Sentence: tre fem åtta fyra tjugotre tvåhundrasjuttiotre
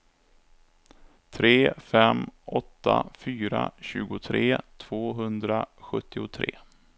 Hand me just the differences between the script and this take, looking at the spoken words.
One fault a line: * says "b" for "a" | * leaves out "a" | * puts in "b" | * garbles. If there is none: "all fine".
all fine